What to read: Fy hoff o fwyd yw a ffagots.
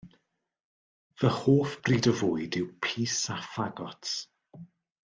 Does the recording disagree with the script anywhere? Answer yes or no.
yes